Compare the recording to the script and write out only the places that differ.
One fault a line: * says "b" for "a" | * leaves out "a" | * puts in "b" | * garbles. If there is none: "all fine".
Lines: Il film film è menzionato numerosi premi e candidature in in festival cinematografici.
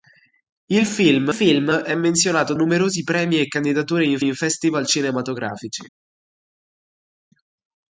all fine